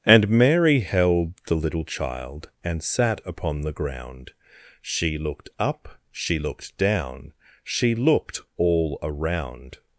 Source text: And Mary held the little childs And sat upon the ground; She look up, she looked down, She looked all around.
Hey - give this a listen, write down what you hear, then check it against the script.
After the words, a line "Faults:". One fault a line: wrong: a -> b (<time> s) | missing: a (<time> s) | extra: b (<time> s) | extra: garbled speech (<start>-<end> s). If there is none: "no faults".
And Mary held the little child And sat upon the ground; She looked up, she looked down, She looked all around.
Faults:
wrong: childs -> child (1.9 s)
wrong: look -> looked (5.2 s)